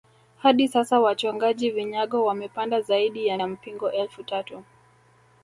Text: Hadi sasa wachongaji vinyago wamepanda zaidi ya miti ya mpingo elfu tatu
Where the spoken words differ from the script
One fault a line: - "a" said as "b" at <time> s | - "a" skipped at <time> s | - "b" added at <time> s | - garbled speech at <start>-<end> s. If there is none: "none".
- "miti" skipped at 3.4 s